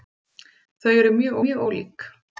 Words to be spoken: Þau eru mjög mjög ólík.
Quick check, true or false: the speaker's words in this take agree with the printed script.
true